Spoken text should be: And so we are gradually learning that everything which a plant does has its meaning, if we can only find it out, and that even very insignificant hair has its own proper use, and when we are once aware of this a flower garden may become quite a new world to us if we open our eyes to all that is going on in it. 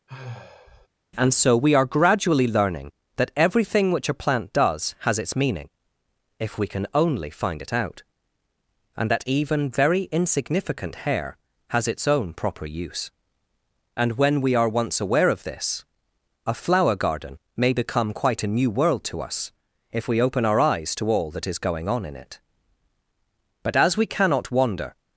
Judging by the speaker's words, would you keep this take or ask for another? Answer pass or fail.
fail